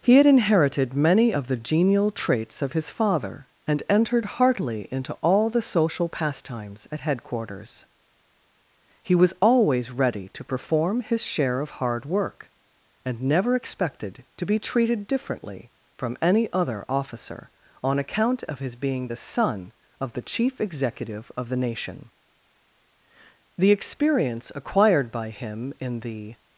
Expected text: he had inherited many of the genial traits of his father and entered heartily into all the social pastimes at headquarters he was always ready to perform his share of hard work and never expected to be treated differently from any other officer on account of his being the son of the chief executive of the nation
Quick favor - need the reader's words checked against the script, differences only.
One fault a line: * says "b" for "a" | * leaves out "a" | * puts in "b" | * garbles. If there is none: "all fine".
* puts in "the experience acquired by him in the"